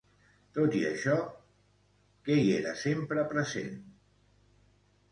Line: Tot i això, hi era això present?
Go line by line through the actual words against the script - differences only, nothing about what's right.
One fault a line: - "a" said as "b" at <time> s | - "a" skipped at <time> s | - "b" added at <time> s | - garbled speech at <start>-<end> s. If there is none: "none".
- "què" added at 2.3 s
- "això" said as "sempre" at 2.9 s